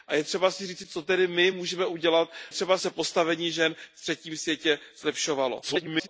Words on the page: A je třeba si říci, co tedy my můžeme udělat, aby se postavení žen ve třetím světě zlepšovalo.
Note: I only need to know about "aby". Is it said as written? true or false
false